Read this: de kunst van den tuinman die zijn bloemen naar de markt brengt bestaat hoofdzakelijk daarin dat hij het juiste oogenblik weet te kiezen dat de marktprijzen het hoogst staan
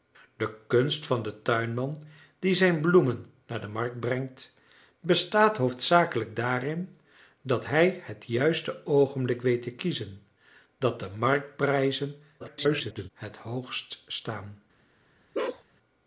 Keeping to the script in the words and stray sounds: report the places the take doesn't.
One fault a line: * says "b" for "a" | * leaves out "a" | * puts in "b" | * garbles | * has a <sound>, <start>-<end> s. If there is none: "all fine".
* garbles
* has a bark, 15.3-15.6 s